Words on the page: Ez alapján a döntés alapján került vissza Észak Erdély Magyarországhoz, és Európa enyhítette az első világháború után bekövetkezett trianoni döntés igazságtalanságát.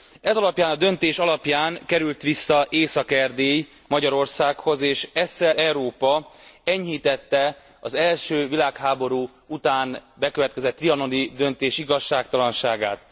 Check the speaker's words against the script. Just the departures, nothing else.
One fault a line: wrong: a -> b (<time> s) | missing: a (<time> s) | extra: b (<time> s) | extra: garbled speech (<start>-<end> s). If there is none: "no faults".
no faults